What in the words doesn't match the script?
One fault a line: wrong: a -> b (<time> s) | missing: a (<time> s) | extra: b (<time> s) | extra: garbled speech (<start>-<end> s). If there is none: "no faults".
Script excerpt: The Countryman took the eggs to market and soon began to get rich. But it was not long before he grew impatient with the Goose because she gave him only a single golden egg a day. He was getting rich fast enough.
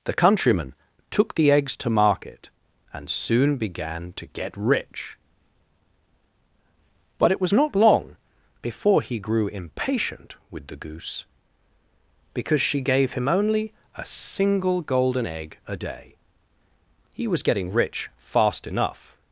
no faults